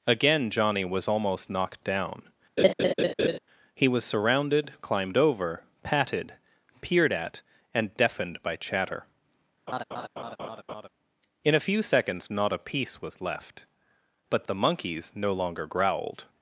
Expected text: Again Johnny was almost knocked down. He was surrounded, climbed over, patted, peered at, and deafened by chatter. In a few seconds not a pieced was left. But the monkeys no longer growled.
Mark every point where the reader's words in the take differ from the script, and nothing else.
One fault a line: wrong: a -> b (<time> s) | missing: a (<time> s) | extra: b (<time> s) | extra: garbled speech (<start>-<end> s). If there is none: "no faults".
wrong: pieced -> piece (12.6 s)